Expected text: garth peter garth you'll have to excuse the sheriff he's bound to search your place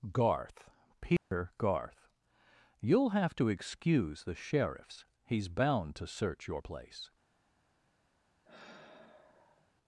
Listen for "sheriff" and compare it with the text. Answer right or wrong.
wrong